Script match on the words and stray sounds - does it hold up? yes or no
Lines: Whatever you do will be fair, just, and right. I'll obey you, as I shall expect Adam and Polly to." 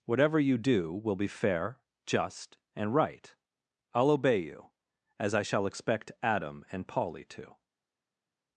yes